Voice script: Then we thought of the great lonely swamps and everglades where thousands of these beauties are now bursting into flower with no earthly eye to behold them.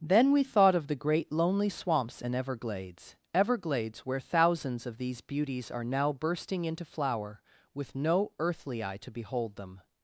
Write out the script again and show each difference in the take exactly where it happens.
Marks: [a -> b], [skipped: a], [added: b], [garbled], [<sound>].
Then we thought of the great lonely swamps and everglades [added: everglades] where thousands of these beauties are now bursting into flower with no earthly eye to behold them.